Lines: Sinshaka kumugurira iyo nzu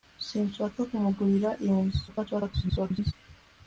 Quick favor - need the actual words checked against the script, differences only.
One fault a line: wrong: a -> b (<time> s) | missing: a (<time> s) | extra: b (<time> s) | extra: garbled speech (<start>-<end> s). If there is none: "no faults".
extra: garbled speech (2.1-3.1 s)